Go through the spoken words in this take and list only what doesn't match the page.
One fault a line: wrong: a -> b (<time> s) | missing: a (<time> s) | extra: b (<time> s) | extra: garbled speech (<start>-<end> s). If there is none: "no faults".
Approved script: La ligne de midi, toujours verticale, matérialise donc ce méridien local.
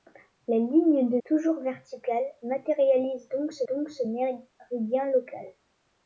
missing: midi (1.2 s)
extra: donc ce (3.7 s)